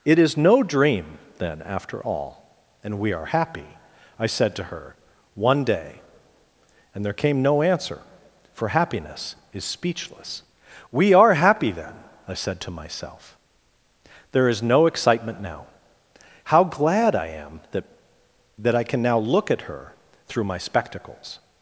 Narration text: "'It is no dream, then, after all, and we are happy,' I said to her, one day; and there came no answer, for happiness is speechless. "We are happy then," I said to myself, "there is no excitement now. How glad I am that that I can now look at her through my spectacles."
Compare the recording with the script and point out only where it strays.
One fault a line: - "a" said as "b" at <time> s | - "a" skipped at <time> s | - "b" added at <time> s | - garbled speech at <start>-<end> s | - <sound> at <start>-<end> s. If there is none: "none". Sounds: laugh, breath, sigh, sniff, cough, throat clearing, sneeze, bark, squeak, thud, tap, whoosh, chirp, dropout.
none